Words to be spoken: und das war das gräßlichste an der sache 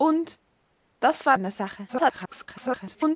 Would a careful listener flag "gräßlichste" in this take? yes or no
yes